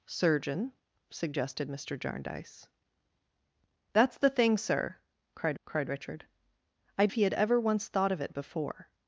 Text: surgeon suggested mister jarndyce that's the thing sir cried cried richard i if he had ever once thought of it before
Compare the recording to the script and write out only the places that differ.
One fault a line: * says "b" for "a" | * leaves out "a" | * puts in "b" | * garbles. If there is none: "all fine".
all fine